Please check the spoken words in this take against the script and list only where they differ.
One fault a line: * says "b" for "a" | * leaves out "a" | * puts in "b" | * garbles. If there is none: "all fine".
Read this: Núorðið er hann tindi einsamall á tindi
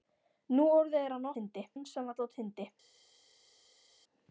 all fine